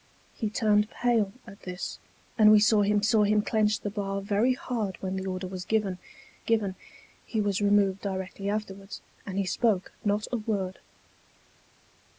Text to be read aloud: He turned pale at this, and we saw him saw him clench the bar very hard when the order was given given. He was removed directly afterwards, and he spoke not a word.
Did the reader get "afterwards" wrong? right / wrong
right